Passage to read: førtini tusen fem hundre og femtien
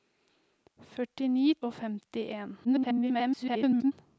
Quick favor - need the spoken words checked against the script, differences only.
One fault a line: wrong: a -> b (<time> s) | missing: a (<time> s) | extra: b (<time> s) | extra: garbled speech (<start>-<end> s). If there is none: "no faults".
missing: tusen fem hundre (1.4 s)
extra: garbled speech (2.6-3.9 s)